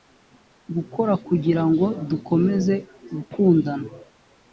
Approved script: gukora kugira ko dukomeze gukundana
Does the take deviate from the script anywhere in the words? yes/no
yes